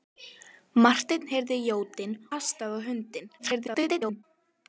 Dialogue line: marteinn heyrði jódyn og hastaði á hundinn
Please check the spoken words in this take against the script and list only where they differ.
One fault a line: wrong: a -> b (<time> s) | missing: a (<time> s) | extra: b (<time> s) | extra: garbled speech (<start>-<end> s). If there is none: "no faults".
missing: og (2.2 s)
extra: garbled speech (3.4-4.2 s)